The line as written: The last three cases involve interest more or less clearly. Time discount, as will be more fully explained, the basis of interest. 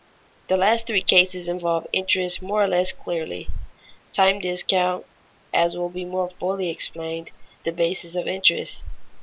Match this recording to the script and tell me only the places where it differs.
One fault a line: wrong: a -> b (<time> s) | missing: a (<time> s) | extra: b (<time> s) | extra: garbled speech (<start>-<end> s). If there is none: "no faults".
no faults